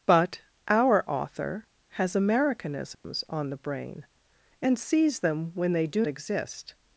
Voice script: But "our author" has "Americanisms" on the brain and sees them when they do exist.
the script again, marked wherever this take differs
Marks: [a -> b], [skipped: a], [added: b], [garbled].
But "our author" has "Americanisms" on the brain and sees them when they do exist.